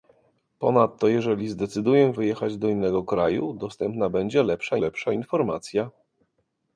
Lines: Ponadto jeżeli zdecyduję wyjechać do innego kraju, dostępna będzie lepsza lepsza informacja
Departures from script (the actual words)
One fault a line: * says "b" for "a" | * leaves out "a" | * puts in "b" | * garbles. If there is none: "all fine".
all fine